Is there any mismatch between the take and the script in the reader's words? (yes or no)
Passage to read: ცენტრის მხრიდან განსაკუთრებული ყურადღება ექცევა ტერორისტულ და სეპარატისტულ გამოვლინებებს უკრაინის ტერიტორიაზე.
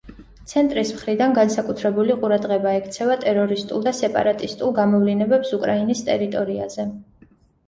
no